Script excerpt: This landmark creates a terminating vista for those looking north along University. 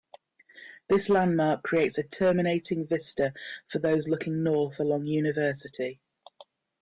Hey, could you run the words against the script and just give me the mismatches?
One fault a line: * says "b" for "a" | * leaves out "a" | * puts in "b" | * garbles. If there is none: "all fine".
all fine